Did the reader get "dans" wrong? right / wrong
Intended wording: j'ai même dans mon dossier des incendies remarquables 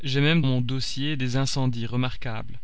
wrong